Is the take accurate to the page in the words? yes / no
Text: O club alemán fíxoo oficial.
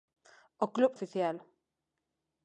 no